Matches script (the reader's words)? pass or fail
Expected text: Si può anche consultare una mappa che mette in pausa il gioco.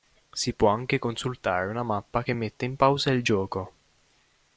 pass